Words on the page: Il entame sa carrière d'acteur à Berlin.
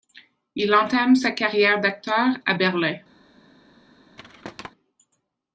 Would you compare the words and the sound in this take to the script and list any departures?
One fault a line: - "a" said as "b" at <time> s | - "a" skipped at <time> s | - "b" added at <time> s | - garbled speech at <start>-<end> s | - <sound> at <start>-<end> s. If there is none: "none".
- thud at 4.2-4.7 s